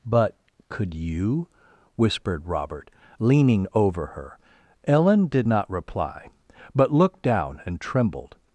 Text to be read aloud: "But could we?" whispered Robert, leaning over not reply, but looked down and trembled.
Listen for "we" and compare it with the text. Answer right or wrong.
wrong